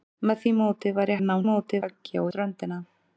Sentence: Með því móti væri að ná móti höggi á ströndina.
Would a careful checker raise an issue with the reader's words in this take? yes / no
no